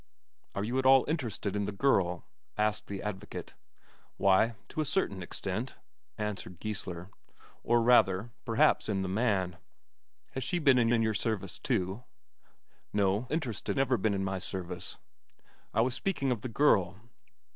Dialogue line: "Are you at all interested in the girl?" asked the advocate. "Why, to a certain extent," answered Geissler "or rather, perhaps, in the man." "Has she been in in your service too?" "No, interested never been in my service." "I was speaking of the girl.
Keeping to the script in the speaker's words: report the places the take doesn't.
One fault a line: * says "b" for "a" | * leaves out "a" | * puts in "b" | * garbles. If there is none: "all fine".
all fine